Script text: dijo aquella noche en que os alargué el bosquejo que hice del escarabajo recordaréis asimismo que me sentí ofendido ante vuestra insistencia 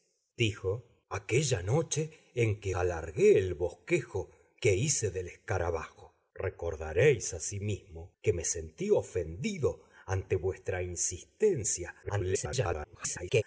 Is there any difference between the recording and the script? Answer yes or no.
yes